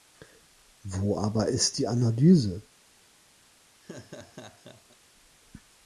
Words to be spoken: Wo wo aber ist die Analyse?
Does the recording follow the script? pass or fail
fail